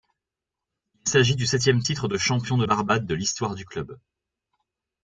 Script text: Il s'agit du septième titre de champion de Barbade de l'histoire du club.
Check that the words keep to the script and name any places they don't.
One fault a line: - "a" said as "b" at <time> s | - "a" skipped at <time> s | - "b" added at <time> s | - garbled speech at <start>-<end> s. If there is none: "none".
none